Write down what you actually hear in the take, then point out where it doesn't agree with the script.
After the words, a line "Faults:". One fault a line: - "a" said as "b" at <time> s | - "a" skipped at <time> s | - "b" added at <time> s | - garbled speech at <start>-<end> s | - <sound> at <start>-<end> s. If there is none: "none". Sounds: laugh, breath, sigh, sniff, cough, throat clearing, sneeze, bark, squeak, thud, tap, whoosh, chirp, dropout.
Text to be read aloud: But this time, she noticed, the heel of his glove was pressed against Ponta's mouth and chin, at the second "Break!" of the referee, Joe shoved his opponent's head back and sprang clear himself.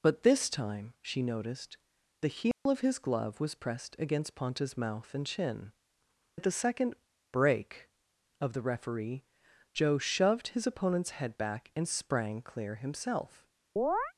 But this time, she noticed, the heel of his glove was pressed against Ponta's mouth and chin, at the second "Break!" of the referee, Joe shoved his opponent's head back and sprang clear himself.
Faults:
- dropout at 2.5-2.7 s
- chirp at 13.8-14.1 s